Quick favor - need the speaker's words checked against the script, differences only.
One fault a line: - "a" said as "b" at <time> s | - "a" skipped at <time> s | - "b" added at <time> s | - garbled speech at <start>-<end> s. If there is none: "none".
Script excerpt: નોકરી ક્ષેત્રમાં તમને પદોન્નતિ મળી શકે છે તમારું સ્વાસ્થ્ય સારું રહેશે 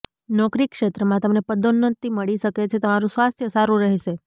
none